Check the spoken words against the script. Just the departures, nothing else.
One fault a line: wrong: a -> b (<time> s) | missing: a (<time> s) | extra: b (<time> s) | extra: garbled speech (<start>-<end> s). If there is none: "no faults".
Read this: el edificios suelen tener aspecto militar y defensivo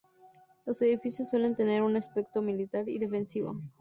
wrong: el -> los (0.7 s)
extra: un (1.8 s)